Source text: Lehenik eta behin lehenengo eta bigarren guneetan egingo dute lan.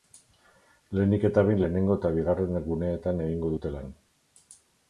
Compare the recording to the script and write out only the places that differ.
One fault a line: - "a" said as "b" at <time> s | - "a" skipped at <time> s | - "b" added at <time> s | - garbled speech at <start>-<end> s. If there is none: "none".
none